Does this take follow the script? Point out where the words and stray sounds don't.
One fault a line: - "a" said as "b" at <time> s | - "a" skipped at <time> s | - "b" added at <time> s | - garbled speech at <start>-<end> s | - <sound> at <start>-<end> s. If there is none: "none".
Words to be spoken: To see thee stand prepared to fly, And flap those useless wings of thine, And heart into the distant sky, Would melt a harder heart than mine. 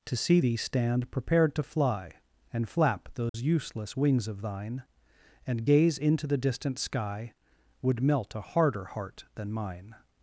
- dropout at 3.3-3.3 s
- "heart" said as "gaze" at 5.6 s